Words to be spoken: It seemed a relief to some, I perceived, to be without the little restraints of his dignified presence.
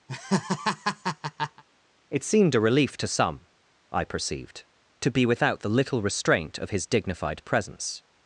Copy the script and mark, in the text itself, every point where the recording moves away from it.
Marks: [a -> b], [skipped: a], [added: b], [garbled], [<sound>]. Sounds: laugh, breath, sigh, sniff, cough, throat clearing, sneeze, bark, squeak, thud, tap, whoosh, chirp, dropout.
[laugh] It seemed a relief to some, I perceived, to be without the little [restraints -> restraint] of his dignified presence.